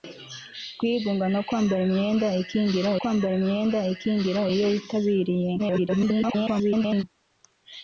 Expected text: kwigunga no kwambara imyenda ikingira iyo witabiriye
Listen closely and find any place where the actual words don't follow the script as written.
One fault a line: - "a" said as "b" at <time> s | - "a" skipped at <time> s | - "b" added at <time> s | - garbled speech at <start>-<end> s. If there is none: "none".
- "kwambara imyenda ikingira" added at 3.0 s
- garbled speech at 5.6-7.0 s